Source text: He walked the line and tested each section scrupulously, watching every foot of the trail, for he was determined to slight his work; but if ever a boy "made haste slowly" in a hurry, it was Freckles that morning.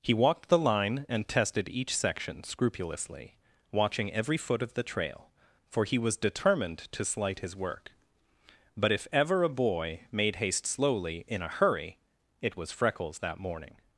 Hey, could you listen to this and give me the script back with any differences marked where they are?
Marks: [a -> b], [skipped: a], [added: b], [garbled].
He walked the line and tested each section scrupulously, watching every foot of the trail, for he was determined to slight his work; but if ever a boy "made haste slowly" in a hurry, it was Freckles that morning.